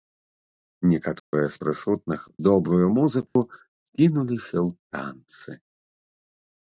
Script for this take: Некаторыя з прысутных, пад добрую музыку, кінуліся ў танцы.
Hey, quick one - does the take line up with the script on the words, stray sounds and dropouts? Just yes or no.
no